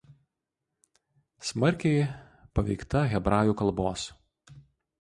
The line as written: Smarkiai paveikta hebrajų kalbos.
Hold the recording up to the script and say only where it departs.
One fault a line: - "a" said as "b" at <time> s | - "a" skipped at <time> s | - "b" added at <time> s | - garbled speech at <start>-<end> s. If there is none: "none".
none